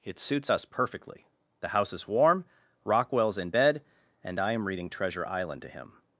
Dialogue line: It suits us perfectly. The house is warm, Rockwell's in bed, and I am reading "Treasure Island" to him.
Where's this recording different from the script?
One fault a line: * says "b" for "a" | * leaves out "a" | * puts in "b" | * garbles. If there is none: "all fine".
all fine